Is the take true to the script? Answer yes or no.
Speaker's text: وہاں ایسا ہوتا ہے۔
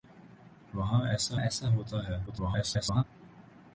no